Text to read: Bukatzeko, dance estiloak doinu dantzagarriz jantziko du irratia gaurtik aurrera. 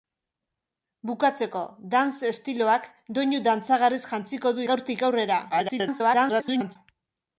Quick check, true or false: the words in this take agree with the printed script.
false